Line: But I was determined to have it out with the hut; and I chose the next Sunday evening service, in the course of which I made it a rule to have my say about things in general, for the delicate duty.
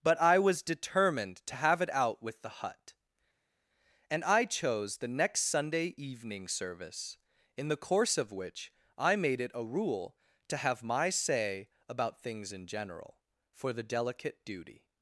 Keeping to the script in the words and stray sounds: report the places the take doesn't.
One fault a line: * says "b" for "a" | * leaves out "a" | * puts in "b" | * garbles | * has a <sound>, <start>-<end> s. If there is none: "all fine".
all fine